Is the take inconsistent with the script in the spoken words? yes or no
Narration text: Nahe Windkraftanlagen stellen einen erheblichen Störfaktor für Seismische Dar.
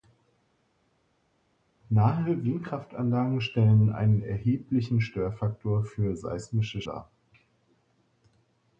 no